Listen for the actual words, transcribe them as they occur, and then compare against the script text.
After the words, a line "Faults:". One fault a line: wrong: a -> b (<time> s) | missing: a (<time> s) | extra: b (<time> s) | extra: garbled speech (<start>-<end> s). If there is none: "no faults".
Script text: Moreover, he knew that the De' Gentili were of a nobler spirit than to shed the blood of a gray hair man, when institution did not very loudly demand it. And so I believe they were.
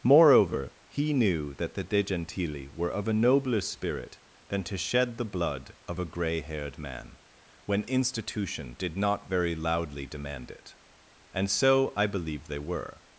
Moreover, he knew that the De' Gentili were of a nobler spirit than to shed the blood of a gray haired man, when institution did not very loudly demand it. And so I believe they were.
Faults:
wrong: hair -> haired (6.4 s)